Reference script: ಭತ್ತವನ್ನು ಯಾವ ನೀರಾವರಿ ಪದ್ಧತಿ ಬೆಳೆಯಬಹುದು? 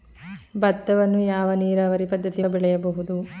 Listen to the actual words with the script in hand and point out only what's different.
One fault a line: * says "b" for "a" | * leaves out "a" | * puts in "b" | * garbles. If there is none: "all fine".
all fine